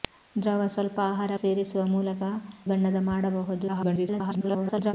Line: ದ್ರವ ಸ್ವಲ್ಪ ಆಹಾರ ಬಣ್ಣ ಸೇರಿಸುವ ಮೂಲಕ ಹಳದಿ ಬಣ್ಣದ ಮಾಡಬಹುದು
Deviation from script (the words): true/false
true